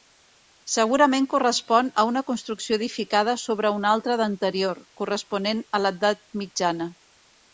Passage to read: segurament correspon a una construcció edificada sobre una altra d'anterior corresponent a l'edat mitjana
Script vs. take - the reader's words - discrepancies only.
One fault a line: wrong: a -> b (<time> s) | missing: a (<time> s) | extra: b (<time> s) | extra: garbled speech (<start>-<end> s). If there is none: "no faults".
no faults